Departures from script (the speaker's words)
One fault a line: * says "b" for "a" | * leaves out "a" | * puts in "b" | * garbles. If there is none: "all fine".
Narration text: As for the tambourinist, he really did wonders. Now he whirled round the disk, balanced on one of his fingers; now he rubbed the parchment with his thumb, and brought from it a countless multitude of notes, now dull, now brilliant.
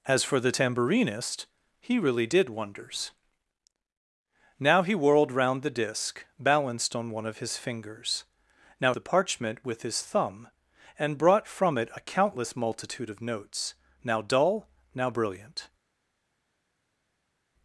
* leaves out "he rubbed"